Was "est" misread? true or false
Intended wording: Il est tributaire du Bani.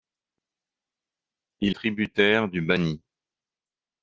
true